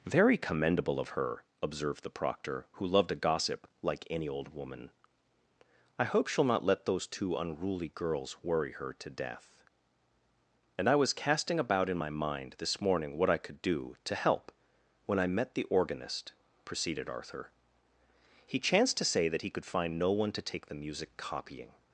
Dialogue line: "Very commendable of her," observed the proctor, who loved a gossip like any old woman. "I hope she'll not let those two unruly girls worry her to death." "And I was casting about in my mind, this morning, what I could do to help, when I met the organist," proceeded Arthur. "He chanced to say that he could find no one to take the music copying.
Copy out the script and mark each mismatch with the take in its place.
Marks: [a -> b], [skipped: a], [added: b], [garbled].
"Very commendable of her," observed the proctor, who loved a gossip like any old woman. "I hope she'll not let those two unruly girls worry her to death." "And I was casting about in my mind, this morning, what I could do to help, when I met the organist," proceeded Arthur. "He chanced to say that he could find no one to take the music copying.